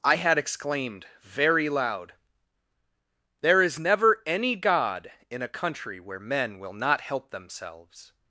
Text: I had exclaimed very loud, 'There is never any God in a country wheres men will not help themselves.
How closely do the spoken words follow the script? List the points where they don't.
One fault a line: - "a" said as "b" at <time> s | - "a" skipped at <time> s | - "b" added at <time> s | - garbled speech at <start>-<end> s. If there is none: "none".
- "wheres" said as "where" at 6.0 s